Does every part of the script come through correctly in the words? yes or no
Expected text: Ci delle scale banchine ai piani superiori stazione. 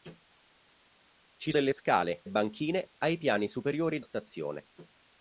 yes